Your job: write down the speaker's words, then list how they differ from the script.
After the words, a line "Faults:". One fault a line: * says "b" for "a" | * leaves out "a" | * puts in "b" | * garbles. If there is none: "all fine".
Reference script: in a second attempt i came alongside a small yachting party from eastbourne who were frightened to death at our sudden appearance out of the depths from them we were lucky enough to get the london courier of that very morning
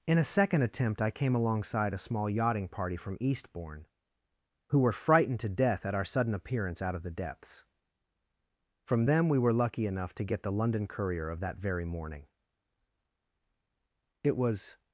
in a second attempt i came alongside a small yachting party from eastbourne who were frightened to death at our sudden appearance out of the depths from them we were lucky enough to get the london courier of that very morning it was
Faults:
* puts in "it was"